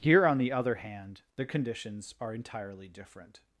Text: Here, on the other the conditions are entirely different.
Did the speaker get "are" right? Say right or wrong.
right